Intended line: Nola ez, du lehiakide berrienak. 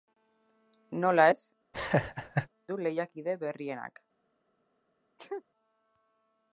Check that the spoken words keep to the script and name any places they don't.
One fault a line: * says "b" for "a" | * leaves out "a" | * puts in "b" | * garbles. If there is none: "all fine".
all fine